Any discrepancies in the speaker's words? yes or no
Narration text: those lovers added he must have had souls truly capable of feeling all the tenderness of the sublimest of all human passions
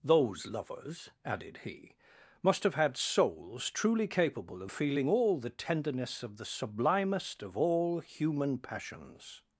no